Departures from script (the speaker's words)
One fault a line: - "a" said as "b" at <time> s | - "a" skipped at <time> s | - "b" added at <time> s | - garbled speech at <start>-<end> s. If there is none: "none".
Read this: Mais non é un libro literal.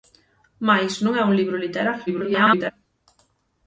- garbled speech at 2.1-2.7 s